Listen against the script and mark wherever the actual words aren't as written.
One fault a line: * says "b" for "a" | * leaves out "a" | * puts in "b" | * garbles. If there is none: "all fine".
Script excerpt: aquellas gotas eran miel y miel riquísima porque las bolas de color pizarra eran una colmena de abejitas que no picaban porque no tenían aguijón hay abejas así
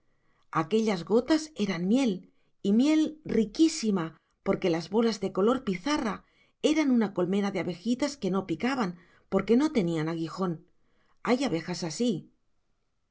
all fine